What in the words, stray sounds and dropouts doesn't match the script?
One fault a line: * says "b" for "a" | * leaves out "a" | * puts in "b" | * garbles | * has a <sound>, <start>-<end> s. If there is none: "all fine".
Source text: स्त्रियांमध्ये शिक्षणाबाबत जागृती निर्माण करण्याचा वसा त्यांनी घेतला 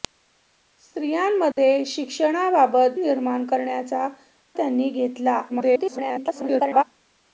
* has a dropout, 1.5-1.6 s
* leaves out "जागृती"
* leaves out "वसा"
* garbles